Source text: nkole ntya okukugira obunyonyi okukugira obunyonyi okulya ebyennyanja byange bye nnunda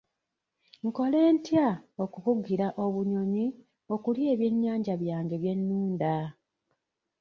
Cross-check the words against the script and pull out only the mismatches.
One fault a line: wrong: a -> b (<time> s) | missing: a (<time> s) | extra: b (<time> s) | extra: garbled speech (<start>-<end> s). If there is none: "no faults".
missing: okukugira obunyonyi (3.5 s)